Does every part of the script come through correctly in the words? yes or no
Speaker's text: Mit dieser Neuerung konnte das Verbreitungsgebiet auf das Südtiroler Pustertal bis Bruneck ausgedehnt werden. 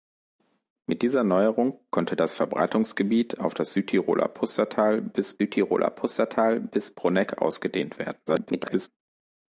no